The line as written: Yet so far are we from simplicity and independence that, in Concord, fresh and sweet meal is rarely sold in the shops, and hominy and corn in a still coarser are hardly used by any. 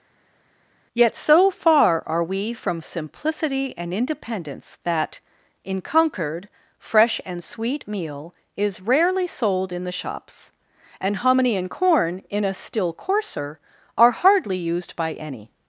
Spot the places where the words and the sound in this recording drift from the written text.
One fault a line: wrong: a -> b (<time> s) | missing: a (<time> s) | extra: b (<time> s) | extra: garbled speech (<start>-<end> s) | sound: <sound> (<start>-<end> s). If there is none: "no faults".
no faults